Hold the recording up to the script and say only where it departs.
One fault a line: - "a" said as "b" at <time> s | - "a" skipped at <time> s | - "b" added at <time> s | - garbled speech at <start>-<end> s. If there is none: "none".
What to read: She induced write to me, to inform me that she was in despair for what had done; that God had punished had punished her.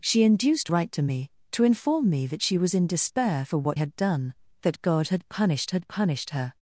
none